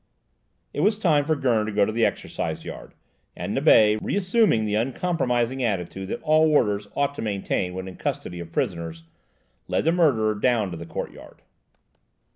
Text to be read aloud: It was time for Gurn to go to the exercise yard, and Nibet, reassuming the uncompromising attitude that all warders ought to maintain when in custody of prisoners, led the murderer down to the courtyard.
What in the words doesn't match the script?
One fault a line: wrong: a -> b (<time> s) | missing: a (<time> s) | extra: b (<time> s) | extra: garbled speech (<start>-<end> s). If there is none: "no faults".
no faults